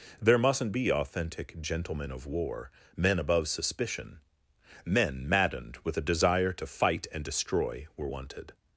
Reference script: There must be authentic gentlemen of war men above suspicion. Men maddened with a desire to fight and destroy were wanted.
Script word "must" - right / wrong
wrong